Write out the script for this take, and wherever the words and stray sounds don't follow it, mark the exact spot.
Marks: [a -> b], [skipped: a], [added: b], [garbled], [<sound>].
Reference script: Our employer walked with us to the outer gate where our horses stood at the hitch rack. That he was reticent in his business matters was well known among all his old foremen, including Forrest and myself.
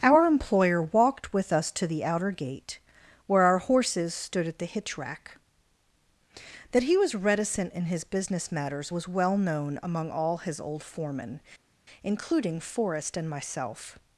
Our employer walked with us to the outer gate where our horses stood at the hitch rack. That he was reticent in his business matters was well known among all his old foremen, including Forrest and myself.